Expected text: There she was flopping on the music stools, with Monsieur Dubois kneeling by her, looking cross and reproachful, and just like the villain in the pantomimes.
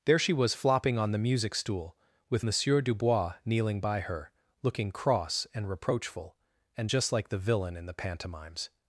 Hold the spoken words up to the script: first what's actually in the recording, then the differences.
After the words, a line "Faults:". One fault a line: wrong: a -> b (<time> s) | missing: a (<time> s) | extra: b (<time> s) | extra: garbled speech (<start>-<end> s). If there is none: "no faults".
There she was flopping on the music stool, with Monsieur Dubois kneeling by her, looking cross and reproachful, and just like the villain in the pantomimes.
Faults:
wrong: stools -> stool (1.5 s)